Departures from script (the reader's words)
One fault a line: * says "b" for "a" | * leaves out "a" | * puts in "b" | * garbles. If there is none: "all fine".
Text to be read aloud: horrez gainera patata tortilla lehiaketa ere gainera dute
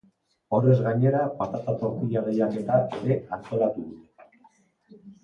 * says "antolatu" for "gainera"